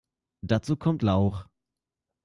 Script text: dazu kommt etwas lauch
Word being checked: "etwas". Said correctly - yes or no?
no